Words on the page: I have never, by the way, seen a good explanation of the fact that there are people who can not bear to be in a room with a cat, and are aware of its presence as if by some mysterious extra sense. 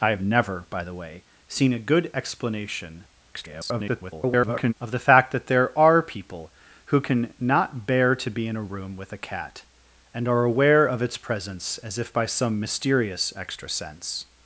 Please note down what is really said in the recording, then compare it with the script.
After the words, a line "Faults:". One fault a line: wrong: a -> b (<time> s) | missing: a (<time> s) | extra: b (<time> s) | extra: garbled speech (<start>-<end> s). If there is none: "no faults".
I have never, by the way, seen a good explanation [garbled] of the fact that there are people who can not bear to be in a room with a cat, and are aware of its presence as if by some mysterious extra sense.
Faults:
extra: garbled speech (3.3-4.7 s)